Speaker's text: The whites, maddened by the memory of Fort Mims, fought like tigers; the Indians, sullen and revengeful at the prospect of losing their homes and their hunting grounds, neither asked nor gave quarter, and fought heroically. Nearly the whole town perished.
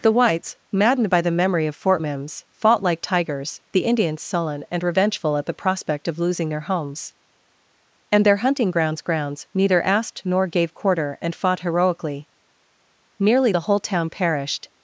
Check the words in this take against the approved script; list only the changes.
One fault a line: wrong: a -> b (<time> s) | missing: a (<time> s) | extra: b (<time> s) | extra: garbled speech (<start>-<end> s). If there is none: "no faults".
extra: grounds (9.0 s)